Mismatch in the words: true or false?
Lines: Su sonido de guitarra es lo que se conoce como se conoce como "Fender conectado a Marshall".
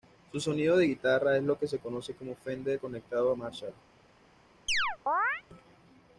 true